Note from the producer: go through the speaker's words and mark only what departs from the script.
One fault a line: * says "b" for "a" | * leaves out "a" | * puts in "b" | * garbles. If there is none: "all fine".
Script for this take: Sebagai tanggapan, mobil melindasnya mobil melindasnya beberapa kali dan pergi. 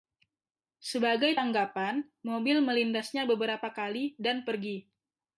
* leaves out "mobil melindasnya"